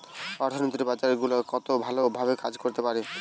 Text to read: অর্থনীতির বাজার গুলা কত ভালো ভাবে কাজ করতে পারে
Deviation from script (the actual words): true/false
false